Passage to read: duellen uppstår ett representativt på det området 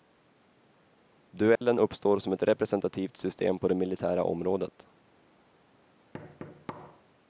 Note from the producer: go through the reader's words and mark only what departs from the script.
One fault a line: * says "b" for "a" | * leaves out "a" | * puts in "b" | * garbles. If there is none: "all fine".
* puts in "som"
* puts in "system"
* puts in "militära"